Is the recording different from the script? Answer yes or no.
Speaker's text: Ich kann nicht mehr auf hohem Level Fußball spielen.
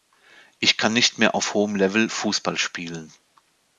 no